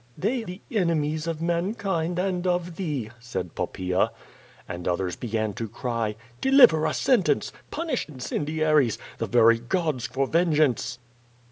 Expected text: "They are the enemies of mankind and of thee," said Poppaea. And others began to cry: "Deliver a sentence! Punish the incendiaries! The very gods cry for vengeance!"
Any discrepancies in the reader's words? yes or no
yes